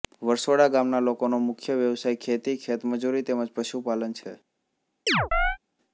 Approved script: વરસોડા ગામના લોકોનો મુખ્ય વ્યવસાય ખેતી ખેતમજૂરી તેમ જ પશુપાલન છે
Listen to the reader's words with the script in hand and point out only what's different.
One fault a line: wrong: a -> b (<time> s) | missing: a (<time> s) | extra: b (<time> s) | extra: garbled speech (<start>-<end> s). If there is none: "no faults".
no faults